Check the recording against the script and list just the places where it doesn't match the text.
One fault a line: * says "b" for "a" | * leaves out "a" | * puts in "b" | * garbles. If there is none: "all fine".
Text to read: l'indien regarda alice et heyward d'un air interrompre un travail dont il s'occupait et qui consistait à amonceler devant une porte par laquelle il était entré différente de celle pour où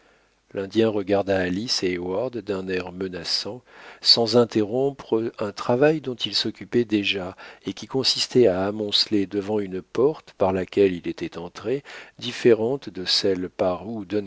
* puts in "menaçant sans"
* puts in "déjà"
* says "par" for "pour"